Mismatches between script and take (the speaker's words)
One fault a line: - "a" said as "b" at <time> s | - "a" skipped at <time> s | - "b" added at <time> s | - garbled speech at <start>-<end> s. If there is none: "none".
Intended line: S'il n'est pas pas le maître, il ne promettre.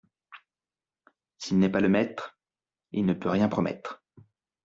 - "pas" skipped at 1.8 s
- "peut rien" added at 3.1 s